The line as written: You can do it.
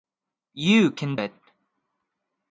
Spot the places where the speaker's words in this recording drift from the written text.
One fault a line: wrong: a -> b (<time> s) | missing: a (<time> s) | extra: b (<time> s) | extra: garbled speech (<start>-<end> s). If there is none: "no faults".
missing: do (1.1 s)